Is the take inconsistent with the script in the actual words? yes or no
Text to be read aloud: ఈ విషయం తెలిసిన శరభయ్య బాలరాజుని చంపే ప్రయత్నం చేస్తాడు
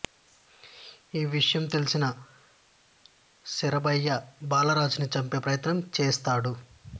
no